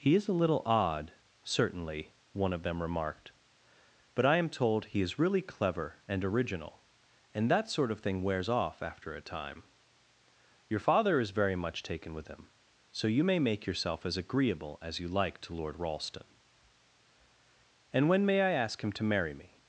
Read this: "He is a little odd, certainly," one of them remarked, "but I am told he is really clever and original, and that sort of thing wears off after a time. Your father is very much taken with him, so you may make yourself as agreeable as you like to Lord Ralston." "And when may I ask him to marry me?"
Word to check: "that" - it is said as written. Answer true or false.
true